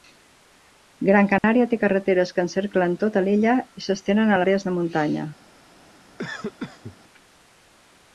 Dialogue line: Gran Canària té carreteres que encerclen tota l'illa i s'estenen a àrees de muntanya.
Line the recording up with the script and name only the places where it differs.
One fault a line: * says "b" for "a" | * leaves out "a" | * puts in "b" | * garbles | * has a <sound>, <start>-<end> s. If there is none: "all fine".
* has a dropout, 1.4-1.4 s
* has a cough, 6.2-7.0 s